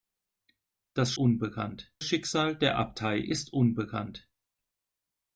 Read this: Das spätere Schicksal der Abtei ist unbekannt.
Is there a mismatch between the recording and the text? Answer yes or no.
yes